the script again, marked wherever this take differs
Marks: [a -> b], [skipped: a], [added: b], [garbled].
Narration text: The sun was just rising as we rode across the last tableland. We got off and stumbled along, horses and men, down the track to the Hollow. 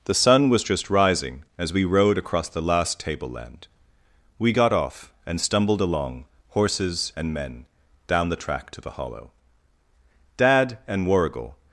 The sun was just rising as we rode across the last tableland. We got off and stumbled along, horses and men, down the track to the Hollow. [added: Dad and Warrigal]